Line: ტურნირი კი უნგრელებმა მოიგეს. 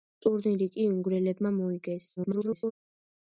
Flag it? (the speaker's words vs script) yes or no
yes